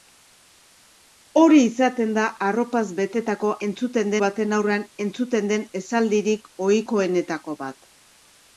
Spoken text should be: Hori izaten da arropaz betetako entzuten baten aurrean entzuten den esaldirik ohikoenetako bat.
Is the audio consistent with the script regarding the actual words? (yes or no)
yes